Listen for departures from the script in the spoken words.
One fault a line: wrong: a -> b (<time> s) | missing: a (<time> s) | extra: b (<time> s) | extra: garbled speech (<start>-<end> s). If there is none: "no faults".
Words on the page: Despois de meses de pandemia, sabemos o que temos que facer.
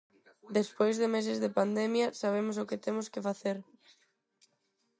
no faults